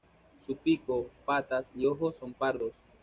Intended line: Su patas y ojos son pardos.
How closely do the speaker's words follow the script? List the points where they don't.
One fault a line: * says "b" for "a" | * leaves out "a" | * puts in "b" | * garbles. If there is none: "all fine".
* puts in "pico"